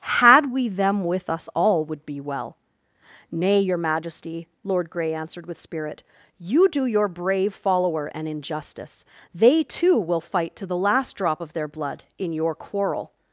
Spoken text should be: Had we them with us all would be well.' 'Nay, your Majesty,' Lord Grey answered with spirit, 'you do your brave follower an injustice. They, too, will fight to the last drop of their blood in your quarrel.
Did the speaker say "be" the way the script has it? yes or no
yes